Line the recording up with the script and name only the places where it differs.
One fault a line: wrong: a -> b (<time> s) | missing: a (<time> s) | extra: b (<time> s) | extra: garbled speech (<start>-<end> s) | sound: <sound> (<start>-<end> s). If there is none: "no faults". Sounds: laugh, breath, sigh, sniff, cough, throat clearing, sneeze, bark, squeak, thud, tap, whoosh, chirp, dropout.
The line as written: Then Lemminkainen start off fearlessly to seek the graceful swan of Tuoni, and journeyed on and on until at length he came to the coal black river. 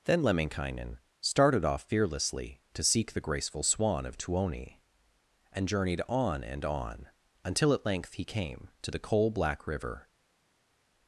wrong: start -> started (1.2 s)